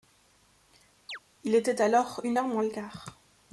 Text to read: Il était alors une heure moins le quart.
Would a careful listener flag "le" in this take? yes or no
no